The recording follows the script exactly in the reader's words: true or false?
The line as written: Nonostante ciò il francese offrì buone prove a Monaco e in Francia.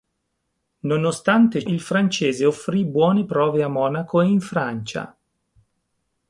false